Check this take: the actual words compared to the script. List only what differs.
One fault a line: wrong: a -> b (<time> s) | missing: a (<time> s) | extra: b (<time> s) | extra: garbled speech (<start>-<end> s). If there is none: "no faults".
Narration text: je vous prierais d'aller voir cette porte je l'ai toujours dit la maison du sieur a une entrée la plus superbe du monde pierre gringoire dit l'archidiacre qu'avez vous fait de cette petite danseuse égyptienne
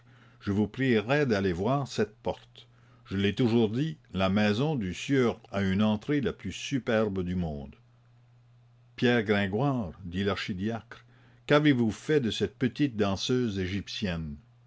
no faults